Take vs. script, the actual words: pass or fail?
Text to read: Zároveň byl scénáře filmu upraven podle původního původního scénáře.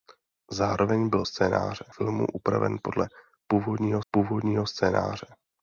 pass